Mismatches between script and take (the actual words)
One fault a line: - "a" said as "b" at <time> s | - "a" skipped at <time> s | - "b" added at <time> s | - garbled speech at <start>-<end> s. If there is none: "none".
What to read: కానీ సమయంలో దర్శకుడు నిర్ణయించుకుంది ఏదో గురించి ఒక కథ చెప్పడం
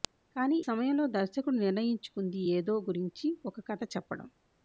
none